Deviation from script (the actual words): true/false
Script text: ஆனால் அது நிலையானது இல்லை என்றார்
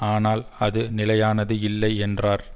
false